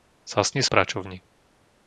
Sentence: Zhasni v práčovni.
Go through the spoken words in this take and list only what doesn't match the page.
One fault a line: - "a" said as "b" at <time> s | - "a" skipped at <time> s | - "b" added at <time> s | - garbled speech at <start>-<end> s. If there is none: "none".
none